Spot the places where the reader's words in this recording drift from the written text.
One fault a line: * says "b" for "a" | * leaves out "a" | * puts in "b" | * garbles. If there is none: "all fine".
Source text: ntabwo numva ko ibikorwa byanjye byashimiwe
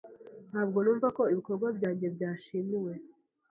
all fine